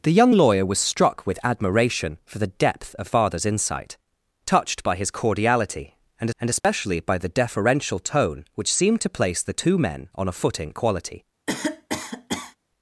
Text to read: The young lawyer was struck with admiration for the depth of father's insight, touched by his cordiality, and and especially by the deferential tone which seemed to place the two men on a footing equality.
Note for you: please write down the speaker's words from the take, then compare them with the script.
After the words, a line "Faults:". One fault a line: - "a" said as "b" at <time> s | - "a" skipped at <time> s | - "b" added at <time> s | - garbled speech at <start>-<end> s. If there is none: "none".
The young lawyer was struck with admiration for the depth of father's insight, touched by his cordiality, and and especially by the deferential tone which seemed to place the two men on a footing equality.
Faults:
none